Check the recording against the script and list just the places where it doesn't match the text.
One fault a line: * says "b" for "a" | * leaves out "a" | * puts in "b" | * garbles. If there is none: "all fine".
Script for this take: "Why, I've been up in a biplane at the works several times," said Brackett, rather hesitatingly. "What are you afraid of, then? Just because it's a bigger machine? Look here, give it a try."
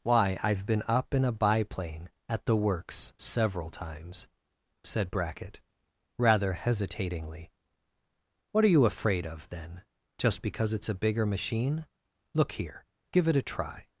all fine